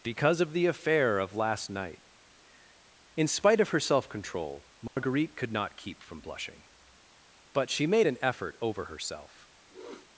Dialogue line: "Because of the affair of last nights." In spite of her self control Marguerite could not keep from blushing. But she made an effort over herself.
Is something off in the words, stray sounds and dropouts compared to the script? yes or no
yes